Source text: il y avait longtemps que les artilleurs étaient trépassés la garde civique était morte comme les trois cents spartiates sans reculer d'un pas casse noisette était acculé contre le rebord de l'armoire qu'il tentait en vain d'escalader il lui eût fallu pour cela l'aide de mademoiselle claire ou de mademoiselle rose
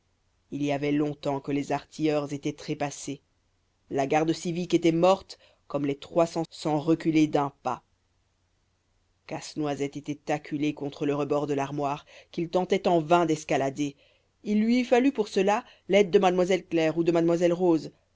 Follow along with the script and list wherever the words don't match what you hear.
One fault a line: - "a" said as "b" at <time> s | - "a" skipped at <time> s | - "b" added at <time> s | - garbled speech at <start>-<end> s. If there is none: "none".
- "spartiates" skipped at 6.4 s